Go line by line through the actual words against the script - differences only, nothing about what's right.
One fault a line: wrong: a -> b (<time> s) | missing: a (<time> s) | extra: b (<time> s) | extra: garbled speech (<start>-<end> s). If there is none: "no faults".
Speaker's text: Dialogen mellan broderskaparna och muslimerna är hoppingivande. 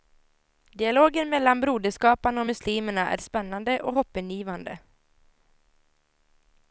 extra: spännande och (3.2 s)